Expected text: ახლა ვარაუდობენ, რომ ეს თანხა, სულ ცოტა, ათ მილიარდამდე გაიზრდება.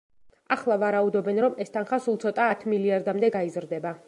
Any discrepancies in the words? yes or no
no